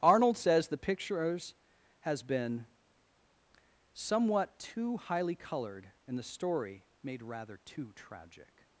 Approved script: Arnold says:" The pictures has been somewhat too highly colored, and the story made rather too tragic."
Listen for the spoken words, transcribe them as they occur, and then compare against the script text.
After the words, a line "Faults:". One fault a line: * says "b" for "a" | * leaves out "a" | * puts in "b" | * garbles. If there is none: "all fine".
Arnold says:" The pictures has been somewhat too highly colored, and the story made rather too tragic."
Faults:
all fine